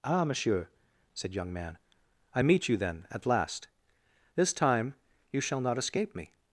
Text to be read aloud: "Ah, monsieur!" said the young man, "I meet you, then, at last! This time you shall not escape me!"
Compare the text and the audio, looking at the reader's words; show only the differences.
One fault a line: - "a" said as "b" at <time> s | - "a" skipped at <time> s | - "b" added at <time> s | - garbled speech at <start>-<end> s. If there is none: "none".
- "the" skipped at 1.3 s